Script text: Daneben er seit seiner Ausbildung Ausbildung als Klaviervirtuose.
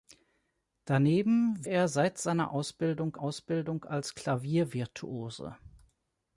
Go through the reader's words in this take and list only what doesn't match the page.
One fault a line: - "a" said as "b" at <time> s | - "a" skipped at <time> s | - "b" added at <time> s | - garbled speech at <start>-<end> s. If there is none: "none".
none